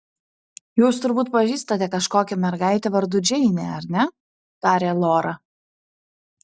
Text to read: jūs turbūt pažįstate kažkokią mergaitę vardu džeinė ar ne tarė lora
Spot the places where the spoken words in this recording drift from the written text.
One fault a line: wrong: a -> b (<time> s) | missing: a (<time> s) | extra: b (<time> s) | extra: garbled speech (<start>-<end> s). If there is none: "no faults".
no faults